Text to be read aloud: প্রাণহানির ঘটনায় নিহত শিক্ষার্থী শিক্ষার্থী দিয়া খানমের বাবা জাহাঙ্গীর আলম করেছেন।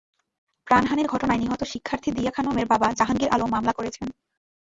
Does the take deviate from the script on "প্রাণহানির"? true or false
false